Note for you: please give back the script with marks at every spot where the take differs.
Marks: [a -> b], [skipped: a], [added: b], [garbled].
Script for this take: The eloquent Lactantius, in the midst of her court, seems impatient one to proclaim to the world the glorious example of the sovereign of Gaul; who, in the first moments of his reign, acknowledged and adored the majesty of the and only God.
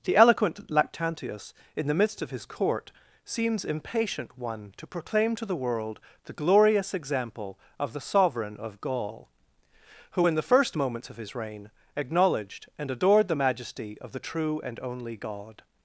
The eloquent Lactantius, in the midst of [her -> his] court, seems impatient one to proclaim to the world the glorious example of the sovereign of Gaul; who, in the first moments of his reign, acknowledged and adored the majesty of the [added: true] and only God.